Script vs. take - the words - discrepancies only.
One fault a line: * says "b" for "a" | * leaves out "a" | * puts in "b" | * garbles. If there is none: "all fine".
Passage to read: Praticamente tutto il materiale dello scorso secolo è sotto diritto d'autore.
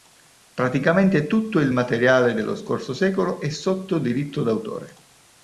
all fine